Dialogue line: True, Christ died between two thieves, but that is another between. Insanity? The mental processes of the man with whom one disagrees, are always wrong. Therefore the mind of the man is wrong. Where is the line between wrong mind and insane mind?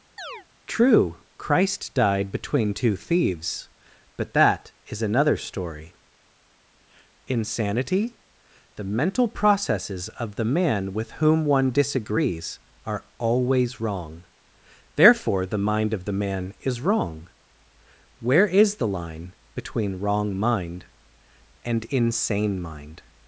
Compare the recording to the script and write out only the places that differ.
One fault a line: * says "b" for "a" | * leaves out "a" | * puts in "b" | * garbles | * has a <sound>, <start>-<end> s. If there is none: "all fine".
* has a chirp, 0.2-0.5 s
* says "story" for "between"